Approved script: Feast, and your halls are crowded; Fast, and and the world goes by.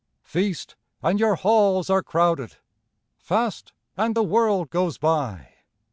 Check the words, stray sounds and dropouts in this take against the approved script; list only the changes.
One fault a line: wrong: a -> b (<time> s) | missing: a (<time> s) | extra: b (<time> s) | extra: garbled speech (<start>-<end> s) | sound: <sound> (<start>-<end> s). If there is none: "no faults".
missing: and (4.2 s)